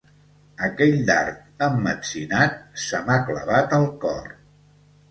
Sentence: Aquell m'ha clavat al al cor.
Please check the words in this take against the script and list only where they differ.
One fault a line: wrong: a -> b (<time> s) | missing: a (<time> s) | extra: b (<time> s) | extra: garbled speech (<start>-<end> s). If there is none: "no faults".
extra: dard emmetzinat se (1.1 s)
missing: al (3.9 s)